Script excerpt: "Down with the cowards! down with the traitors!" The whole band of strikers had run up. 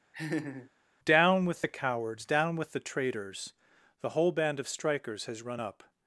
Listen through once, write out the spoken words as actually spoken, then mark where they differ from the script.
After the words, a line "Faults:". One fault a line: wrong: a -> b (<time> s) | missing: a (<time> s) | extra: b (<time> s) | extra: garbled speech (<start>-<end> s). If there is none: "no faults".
"Down with the cowards! down with the traitors!" The whole band of strikers has run up.
Faults:
wrong: had -> has (5.2 s)